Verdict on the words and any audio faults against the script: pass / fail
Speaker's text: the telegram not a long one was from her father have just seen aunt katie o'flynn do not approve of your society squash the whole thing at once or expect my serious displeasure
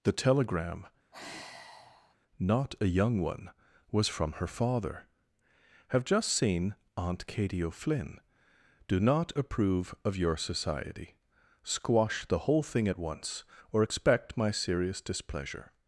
fail